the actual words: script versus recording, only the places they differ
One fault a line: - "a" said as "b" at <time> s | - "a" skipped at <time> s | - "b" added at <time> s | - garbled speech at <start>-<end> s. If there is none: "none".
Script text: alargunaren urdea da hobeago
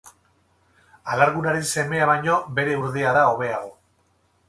- "semea baino bere" added at 1.7 s